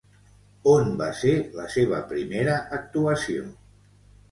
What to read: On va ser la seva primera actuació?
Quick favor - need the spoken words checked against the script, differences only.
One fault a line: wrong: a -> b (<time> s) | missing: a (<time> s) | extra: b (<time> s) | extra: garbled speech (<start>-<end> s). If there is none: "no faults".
no faults